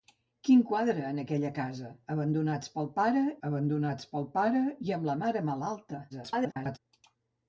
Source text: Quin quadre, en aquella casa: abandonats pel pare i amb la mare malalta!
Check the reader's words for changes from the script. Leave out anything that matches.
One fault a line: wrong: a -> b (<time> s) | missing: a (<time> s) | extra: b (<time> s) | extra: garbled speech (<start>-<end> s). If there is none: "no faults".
extra: abandonats pel pare (3.5 s)
extra: garbled speech (6.1-6.8 s)